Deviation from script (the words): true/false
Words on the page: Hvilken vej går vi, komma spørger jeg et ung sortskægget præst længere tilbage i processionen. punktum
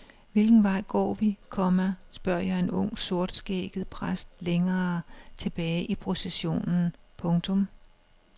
true